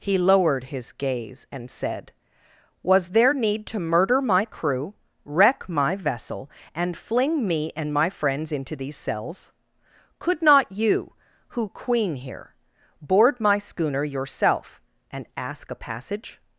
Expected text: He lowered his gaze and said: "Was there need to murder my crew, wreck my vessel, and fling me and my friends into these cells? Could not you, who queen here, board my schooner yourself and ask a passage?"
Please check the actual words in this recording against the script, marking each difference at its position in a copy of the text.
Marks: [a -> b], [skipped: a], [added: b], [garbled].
He lowered his gaze and said: "Was there need to murder my crew, wreck my vessel, and fling me and my friends into these cells? Could not you, who queen here, board my schooner yourself and ask a passage?"